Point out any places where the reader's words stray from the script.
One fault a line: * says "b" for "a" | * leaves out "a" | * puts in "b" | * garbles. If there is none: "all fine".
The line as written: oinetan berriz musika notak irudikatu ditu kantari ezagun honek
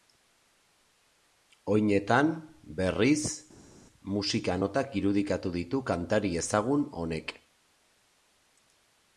all fine